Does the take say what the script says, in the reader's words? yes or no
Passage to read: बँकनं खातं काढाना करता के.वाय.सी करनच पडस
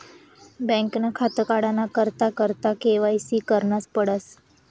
no